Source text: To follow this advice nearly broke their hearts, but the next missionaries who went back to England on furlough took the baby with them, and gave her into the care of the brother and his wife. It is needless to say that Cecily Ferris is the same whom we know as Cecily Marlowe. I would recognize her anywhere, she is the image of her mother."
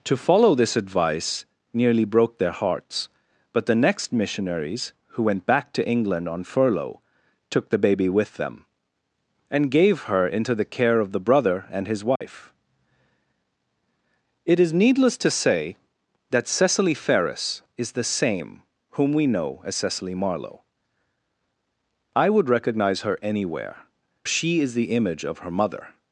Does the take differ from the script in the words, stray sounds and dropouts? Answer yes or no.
yes